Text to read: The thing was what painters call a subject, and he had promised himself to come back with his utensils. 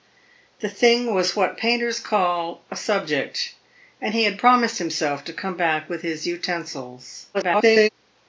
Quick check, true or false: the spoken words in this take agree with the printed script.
false